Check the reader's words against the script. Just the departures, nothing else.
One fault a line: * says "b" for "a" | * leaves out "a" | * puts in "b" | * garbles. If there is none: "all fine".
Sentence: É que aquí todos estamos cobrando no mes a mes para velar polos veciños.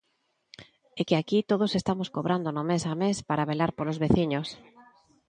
all fine